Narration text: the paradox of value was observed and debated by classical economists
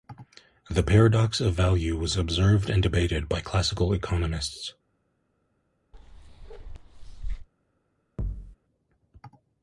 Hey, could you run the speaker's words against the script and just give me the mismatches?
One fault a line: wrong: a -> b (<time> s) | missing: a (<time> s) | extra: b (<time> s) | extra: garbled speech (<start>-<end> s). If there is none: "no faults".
no faults